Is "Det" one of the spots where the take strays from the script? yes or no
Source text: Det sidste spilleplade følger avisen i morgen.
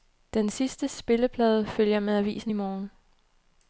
yes